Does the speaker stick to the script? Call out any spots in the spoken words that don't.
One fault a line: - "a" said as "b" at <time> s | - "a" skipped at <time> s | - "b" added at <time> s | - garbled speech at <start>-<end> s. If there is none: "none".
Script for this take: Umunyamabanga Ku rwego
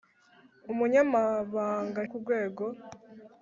none